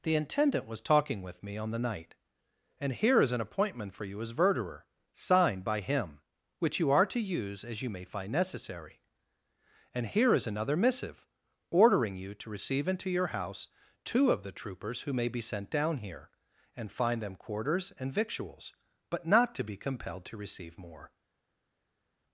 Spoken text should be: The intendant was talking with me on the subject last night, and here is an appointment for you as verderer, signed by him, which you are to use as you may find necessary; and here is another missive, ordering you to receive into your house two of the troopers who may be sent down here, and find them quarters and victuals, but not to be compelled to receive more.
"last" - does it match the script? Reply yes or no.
no